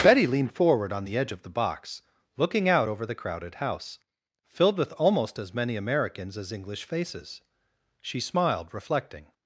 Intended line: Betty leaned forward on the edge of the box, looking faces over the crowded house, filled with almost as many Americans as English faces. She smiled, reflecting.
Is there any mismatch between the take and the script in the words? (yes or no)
yes